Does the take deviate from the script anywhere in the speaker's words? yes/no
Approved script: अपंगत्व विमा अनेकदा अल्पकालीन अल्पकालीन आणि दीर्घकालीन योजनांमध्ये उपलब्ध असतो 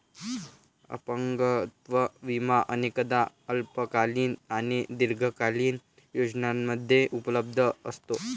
yes